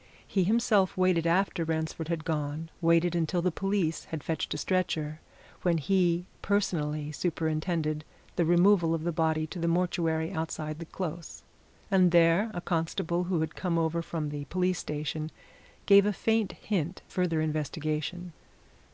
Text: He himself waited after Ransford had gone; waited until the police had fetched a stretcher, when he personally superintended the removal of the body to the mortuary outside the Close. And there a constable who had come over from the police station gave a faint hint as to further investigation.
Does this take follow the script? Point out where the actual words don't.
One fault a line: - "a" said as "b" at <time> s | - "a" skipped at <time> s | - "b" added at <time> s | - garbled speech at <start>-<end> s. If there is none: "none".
- "as to" skipped at 17.0 s